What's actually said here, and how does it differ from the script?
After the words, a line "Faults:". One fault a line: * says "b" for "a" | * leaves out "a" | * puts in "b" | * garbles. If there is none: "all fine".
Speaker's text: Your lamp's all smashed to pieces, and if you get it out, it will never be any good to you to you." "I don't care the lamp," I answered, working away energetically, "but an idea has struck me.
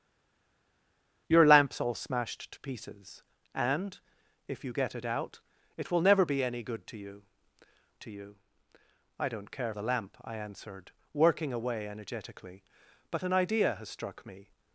Your lamp's all smashed to pieces, and if you get it out, it will never be any good to you to you." "I don't care the lamp," I answered, working away energetically, "but an idea has struck me.
Faults:
all fine